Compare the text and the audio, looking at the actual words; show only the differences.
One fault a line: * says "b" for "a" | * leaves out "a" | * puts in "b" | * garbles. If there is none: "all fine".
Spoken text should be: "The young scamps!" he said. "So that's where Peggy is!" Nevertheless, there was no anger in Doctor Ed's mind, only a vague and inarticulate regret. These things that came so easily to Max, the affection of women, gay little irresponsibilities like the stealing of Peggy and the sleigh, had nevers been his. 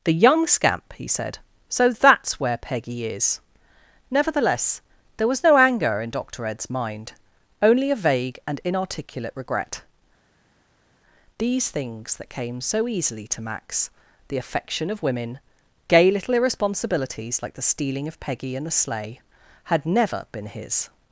* says "scamp" for "scamps"
* says "never" for "nevers"